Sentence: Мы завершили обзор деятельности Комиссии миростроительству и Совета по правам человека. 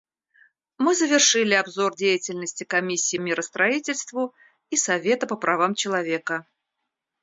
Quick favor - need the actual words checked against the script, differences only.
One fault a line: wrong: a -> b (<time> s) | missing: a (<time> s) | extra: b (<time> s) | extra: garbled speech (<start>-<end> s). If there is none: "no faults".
no faults